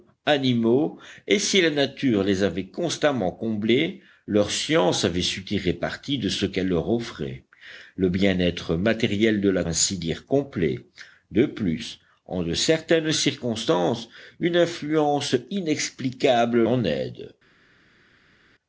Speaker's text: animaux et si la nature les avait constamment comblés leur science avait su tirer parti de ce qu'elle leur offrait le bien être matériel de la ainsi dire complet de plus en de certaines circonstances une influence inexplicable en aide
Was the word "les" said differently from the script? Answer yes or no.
no